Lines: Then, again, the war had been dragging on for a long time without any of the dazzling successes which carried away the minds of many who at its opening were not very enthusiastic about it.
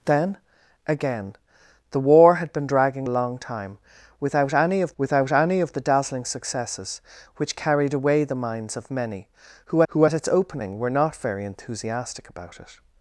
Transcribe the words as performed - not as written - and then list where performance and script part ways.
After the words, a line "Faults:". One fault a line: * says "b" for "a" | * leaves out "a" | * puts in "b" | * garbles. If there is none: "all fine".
Then, again, the war had been dragging a long time without any of without any of the dazzling successes which carried away the minds of many who who at its opening were not very enthusiastic about it.
Faults:
* leaves out "on for"
* puts in "without any of"
* puts in "who"